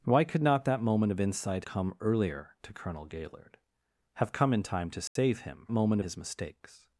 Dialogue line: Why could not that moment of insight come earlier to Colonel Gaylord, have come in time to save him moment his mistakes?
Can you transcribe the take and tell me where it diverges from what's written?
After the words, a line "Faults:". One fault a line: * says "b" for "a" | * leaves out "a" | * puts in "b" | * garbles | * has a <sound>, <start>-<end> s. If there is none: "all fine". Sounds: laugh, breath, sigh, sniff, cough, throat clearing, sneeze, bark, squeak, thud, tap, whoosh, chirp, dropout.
Why could not that moment of insight come earlier to Colonel Gaylord, have come in time to save him moment his mistakes?
Faults:
* has a dropout, 5.1-5.2 s